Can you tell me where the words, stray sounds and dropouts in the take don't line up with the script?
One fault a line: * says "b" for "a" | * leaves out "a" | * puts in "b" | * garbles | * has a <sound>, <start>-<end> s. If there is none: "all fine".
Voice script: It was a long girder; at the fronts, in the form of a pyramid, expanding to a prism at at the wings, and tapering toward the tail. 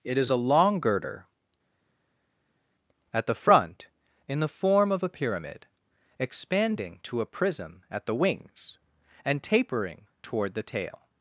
* says "is" for "was"
* says "front" for "fronts"
* leaves out "at"